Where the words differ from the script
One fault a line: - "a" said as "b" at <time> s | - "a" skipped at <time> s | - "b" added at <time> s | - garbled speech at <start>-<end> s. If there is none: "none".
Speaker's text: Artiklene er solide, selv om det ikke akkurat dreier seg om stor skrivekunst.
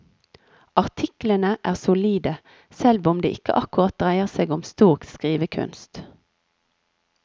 none